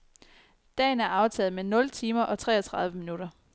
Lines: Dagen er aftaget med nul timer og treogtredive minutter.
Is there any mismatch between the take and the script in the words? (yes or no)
no